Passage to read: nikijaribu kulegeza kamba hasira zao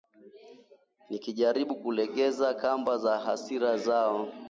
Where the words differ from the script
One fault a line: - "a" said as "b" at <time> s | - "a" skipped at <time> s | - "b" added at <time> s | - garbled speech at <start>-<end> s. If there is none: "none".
- "za" added at 3.0 s